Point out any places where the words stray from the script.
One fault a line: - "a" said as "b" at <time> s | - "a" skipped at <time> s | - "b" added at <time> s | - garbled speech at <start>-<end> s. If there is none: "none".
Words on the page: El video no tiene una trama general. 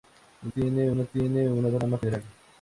- "video" said as "tiene" at 0.5 s